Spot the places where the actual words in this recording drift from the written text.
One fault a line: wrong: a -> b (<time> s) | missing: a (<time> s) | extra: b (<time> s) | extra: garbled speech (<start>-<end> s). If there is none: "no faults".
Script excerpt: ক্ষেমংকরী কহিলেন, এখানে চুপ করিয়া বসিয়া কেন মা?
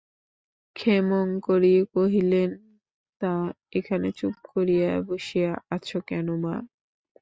extra: তা (3.2 s)
extra: আছ (5.8 s)